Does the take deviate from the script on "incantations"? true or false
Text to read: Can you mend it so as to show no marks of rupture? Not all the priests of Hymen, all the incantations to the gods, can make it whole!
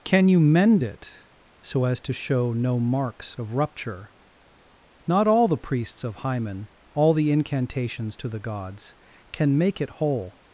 false